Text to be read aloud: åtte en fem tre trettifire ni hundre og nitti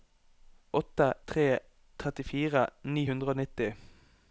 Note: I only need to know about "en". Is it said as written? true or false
false